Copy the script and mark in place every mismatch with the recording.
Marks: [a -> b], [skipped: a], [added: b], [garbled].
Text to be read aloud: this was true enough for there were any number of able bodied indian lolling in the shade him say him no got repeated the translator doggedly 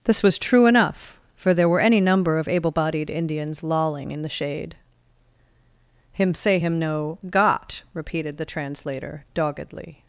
this was true enough for there were any number of able bodied [indian -> indians] lolling in the shade him say him no got repeated the translator doggedly